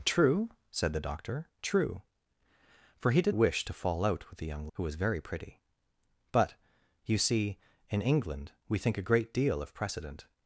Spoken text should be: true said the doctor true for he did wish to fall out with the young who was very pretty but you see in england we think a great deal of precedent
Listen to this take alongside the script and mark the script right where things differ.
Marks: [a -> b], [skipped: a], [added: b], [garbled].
true said the doctor true for he did wish to fall out with the young who was very pretty but you see in england we think a great deal of precedent